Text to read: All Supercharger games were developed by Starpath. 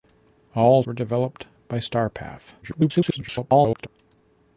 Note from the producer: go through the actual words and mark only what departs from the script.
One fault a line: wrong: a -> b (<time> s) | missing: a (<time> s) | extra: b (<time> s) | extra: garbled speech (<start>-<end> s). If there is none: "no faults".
missing: Supercharger games (0.8 s)
extra: garbled speech (2.6-3.9 s)